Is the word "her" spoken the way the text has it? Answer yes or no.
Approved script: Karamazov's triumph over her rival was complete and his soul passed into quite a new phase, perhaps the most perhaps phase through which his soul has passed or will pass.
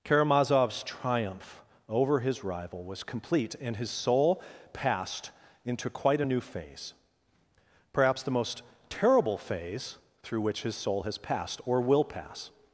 no